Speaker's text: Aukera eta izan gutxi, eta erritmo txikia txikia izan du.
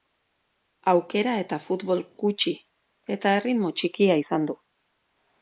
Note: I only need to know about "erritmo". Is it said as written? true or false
true